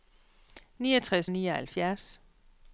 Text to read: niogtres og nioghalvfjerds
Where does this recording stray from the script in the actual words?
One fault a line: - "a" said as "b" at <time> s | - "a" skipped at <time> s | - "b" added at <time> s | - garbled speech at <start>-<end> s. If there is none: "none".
none